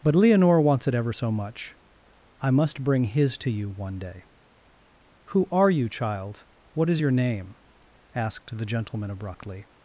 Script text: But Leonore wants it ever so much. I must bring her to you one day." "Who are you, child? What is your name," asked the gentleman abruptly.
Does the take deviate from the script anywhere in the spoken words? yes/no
yes